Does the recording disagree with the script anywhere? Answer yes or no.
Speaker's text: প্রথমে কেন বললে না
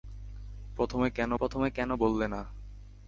yes